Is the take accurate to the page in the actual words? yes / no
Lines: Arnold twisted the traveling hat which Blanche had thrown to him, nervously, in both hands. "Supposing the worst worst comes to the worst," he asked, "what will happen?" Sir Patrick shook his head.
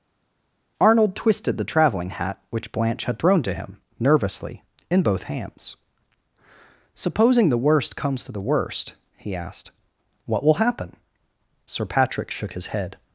no